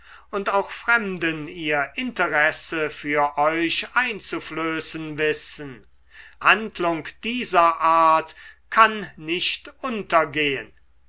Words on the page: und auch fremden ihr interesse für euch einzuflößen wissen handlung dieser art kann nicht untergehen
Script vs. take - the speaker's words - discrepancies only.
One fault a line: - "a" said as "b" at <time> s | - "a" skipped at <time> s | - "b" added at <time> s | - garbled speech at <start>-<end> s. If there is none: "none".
none